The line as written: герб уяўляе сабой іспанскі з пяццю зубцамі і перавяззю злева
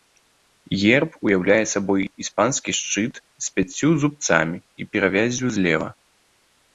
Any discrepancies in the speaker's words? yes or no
yes